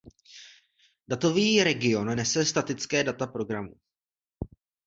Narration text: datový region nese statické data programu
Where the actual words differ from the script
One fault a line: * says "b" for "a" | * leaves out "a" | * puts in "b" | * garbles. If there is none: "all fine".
all fine